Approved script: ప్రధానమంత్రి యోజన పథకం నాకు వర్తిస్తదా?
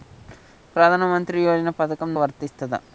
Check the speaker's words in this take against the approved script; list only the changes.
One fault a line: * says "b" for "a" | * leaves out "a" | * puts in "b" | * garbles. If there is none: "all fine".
* leaves out "నాకు"